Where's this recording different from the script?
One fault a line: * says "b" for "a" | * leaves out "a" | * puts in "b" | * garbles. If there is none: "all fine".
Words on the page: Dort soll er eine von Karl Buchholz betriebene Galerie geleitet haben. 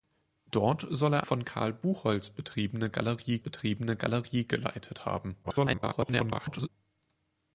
* leaves out "eine"
* puts in "betriebene Galerie"
* garbles